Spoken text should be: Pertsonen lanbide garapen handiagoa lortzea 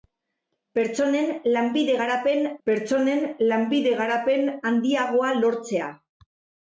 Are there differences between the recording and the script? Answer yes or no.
yes